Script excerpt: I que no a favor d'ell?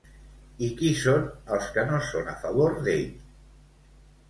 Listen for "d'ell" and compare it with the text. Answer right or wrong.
right